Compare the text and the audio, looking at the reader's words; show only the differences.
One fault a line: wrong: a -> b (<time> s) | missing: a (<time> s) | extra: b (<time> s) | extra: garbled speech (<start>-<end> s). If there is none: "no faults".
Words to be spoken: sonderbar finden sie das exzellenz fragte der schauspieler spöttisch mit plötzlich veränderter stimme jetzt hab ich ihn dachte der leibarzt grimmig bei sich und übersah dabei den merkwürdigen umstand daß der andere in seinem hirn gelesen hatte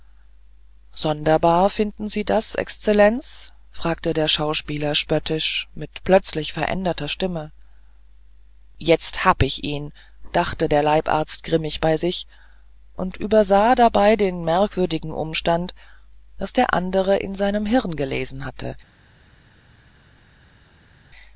no faults